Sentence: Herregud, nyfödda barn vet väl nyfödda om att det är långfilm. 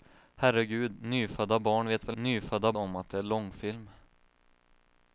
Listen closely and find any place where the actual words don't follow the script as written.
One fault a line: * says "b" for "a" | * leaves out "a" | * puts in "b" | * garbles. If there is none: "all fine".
all fine